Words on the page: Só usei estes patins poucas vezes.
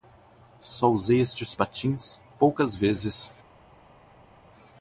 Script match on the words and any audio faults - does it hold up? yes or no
yes